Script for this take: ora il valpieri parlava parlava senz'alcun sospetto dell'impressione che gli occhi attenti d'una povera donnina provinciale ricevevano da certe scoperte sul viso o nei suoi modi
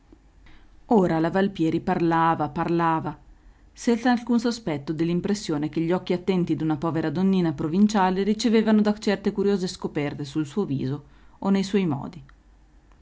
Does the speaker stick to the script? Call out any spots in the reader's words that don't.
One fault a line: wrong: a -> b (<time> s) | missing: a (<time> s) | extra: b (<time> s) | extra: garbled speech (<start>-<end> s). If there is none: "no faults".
wrong: il -> la (1.2 s)
extra: curiose (9.3 s)
extra: suo (10.4 s)